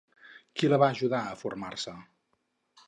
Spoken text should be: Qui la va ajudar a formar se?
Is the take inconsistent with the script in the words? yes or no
no